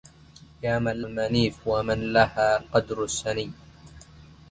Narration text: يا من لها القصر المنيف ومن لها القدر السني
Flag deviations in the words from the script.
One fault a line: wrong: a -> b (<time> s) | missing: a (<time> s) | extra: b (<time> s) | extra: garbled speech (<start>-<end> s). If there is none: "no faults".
missing: لها القصر (1.0 s)